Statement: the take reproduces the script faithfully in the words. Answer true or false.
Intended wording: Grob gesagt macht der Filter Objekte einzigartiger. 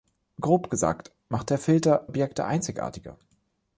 true